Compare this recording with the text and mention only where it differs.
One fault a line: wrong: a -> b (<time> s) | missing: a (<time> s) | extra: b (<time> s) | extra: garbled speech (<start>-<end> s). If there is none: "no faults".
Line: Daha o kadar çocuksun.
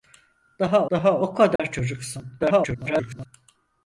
extra: daha (0.9 s)
extra: garbled speech (2.4-3.3 s)